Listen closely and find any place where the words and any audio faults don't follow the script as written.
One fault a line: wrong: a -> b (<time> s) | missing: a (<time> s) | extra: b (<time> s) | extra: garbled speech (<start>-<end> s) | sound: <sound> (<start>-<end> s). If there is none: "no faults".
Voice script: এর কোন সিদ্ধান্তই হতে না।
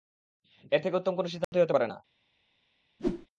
extra: থেকে উত্তম (0.8 s)
sound: dropout (1.4-1.5 s)
extra: পারে (1.7 s)
sound: whoosh (3.0-3.3 s)